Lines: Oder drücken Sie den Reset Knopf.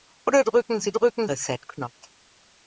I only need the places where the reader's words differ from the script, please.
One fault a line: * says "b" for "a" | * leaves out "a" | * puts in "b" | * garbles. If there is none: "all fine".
* says "drücken" for "den"